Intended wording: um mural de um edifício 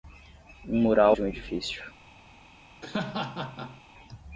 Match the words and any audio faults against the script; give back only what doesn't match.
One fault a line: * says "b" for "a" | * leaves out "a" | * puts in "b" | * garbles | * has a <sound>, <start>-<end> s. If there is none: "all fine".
* has a laugh, 2.8-3.8 s